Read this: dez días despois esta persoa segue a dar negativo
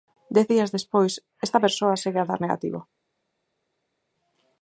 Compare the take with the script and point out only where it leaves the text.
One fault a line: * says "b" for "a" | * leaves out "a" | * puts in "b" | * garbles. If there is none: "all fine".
all fine